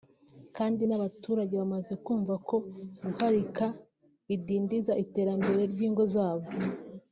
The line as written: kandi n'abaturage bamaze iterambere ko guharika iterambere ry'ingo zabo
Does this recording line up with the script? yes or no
no